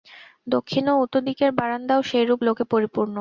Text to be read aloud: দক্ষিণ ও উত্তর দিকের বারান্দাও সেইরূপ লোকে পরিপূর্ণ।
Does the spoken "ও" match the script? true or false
true